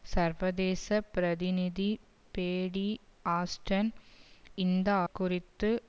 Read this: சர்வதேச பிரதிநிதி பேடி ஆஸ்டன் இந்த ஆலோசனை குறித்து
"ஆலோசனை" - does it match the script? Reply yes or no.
no